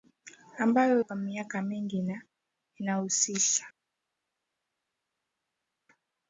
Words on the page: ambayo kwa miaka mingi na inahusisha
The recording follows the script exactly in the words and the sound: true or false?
true